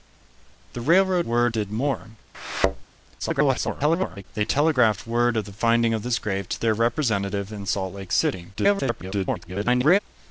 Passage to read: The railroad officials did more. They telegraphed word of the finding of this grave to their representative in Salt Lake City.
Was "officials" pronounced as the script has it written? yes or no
no